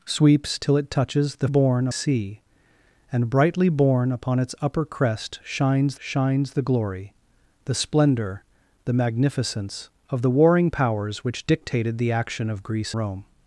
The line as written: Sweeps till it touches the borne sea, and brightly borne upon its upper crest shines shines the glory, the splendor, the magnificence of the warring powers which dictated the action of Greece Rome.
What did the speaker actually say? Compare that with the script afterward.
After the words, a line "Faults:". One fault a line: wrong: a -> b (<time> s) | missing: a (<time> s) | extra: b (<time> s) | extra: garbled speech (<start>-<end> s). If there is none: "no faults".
Sweeps till it touches the borne sea, and brightly borne upon its upper crest shines shines the glory, the splendor, the magnificence of the warring powers which dictated the action of Greece Rome.
Faults:
no faults